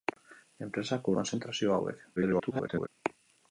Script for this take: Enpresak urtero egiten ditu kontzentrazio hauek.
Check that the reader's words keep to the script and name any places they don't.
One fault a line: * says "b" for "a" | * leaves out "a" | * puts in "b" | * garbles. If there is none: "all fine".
* leaves out "urtero egiten ditu"
* garbles